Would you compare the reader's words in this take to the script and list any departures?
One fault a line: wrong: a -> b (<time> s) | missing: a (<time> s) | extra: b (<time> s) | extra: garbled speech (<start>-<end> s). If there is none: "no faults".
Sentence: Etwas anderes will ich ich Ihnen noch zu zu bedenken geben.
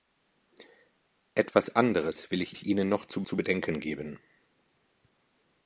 no faults